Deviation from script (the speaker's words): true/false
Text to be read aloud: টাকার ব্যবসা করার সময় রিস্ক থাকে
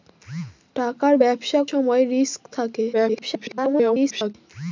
true